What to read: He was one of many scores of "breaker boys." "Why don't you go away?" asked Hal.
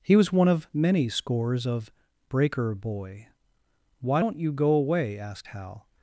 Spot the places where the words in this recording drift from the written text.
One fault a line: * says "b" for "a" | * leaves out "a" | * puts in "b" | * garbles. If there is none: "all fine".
* says "boy" for "boys"